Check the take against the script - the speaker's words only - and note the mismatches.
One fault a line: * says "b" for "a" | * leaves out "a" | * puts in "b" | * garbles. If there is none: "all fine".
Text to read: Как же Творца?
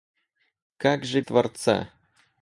all fine